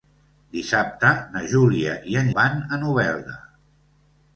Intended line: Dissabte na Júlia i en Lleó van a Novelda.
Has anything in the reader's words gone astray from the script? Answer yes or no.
yes